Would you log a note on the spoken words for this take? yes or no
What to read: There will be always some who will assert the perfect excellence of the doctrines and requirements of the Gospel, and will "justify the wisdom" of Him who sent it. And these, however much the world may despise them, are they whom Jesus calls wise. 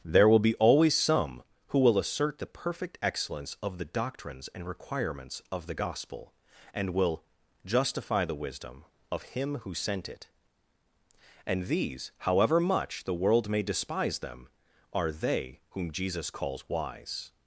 no